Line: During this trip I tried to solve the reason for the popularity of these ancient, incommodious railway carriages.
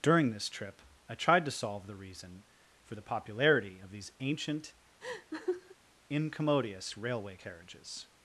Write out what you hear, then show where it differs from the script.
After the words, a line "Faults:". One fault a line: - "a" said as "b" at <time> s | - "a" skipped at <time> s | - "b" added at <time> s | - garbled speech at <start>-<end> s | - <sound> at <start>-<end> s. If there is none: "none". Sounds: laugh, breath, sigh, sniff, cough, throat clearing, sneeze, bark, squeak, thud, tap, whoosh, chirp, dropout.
During this trip I tried to solve the reason for the popularity of these ancient, incommodious railway carriages.
Faults:
- laugh at 5.0-5.8 s